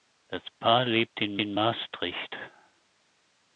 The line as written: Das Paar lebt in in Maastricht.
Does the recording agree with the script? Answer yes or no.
yes